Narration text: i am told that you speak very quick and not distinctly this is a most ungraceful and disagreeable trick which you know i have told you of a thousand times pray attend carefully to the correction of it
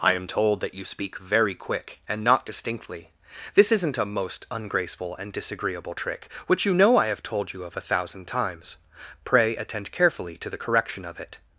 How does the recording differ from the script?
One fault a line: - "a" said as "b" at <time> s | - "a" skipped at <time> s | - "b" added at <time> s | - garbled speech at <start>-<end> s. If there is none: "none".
- "is" said as "isn't" at 3.7 s